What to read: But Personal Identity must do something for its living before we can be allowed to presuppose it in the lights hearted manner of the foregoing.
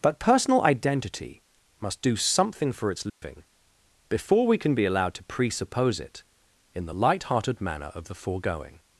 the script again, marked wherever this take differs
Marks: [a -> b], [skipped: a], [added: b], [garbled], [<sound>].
But Personal Identity must do something for its living [dropout] before we can be allowed to presuppose it in the [lights -> light] hearted manner of the foregoing.